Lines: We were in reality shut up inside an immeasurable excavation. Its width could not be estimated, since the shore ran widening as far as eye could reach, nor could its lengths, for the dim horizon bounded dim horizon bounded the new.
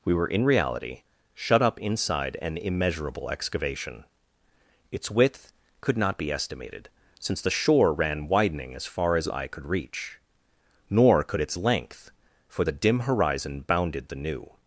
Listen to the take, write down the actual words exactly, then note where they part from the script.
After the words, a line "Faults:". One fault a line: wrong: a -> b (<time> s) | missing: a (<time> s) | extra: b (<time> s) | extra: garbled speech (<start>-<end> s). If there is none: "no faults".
We were in reality shut up inside an immeasurable excavation. Its width could not be estimated, since the shore ran widening as far as eye could reach, nor could its length, for the dim horizon bounded the new.
Faults:
wrong: lengths -> length (11.6 s)
missing: dim horizon bounded (14.1 s)